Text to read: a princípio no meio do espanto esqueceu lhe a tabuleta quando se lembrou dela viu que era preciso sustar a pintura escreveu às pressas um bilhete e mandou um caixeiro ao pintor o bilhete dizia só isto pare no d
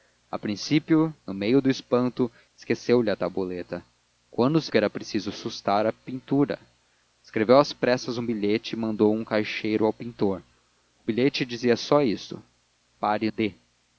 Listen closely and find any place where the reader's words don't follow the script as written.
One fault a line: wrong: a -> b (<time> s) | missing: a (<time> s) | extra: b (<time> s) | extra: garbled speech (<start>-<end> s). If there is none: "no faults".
missing: lembrou dela viu (4.7 s)
missing: no (13.3 s)